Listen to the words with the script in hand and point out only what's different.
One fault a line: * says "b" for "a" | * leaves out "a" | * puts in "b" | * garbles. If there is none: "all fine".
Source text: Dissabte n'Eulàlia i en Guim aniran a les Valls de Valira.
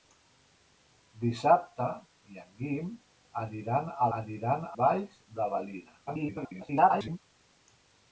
* leaves out "n'Eulàlia"
* says "aniran" for "les"
* garbles